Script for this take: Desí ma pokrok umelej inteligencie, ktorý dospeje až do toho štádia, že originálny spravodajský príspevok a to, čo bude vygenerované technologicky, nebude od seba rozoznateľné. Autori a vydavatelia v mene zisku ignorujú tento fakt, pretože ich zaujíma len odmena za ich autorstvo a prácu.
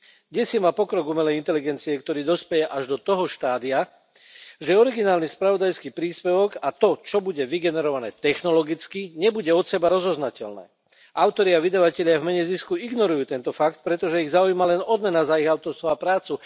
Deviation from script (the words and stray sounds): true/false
false